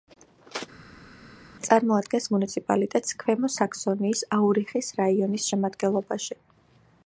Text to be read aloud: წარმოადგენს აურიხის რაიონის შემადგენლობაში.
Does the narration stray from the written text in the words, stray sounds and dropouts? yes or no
yes